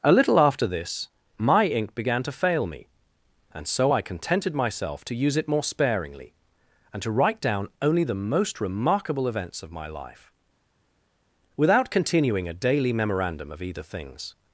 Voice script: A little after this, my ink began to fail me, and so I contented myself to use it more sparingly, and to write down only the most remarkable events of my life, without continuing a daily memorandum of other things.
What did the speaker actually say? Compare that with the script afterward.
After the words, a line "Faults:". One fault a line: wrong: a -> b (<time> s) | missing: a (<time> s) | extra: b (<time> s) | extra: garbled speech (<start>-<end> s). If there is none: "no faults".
A little after this, my ink began to fail me, and so I contented myself to use it more sparingly, and to write down only the most remarkable events of my life, without continuing a daily memorandum of either things.
Faults:
wrong: other -> either (13.6 s)